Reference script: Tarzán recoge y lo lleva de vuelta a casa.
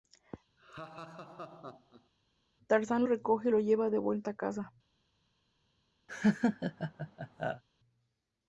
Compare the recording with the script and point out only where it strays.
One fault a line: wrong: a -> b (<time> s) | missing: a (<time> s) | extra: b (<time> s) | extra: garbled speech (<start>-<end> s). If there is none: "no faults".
no faults